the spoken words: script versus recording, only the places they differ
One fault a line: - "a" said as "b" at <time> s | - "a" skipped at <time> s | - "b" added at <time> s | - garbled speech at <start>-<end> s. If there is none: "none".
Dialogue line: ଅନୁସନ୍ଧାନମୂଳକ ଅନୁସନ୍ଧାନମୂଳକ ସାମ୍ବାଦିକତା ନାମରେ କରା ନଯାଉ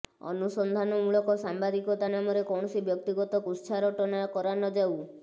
- "ଅନୁସନ୍ଧାନମୂଳକ" skipped at 1.4 s
- "କୌଣସି ବ୍ୟକ୍ତିଗତ କୁତ୍ସାରଟନା" added at 2.5 s